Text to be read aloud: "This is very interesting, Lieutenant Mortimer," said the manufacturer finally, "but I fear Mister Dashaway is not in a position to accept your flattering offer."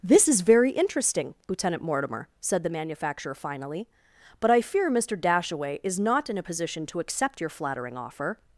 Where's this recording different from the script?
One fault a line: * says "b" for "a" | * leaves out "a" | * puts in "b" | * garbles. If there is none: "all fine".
all fine